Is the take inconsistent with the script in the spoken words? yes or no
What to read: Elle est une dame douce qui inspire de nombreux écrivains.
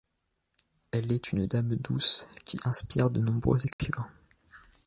no